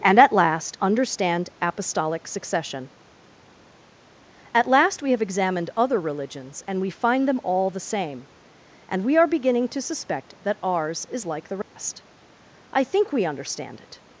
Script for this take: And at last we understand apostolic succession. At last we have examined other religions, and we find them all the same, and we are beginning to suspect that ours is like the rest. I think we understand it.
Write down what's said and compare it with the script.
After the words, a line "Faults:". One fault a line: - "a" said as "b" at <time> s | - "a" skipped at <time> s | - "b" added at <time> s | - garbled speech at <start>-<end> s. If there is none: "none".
And at last understand apostolic succession. At last we have examined other religions, and we find them all the same, and we are beginning to suspect that ours is like the rest. I think we understand it.
Faults:
- "we" skipped at 0.8 s